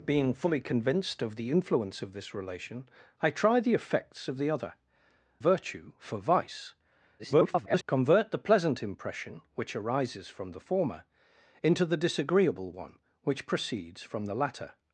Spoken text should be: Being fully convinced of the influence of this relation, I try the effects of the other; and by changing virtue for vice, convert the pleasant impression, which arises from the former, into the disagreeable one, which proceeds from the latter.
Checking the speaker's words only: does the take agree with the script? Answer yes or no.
no